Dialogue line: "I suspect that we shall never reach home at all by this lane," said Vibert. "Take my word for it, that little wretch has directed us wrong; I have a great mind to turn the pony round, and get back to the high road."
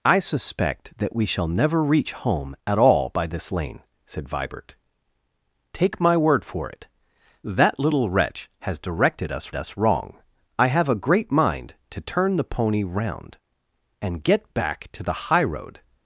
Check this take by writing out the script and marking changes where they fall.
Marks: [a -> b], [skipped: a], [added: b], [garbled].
"I suspect that we shall never reach home at all by this lane," said Vibert. "Take my word for it, that little wretch has directed us [added: us] wrong; I have a great mind to turn the pony round, and get back to the high road."